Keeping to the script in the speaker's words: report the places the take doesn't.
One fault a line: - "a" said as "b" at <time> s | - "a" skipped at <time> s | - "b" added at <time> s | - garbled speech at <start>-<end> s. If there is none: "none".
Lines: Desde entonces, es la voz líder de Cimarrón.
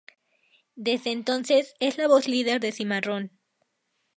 none